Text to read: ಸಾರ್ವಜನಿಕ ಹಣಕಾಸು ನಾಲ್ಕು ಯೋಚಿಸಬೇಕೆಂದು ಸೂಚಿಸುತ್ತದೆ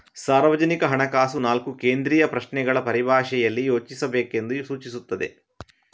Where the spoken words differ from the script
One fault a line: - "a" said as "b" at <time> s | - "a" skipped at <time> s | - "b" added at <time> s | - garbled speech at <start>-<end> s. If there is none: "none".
- "ಕೇಂದ್ರೀಯ ಪ್ರಶ್ನೆಗಳ ಪರಿಭಾಷೆಯಲ್ಲಿ" added at 1.7 s